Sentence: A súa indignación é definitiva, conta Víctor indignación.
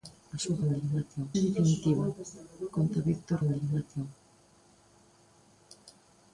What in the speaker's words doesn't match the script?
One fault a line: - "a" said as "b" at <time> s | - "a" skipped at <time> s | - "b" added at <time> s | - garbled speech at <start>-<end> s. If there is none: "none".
none